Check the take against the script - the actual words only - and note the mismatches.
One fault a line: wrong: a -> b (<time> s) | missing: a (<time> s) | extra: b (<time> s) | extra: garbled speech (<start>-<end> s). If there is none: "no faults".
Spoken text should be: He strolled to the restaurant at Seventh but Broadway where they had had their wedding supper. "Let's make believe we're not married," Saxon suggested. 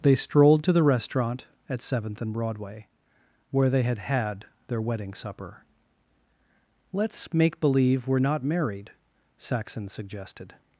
wrong: He -> They (0.0 s)
wrong: but -> and (2.2 s)